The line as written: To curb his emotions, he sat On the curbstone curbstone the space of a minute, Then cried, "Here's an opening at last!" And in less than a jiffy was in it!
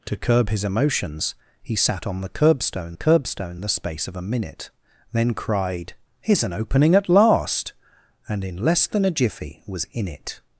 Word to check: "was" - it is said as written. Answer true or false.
true